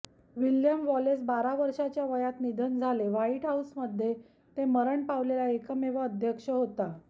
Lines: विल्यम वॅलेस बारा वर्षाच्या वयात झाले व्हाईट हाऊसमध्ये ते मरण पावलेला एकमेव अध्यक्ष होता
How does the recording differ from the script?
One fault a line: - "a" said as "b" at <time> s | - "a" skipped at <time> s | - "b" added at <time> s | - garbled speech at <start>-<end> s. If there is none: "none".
- "निधन" added at 2.4 s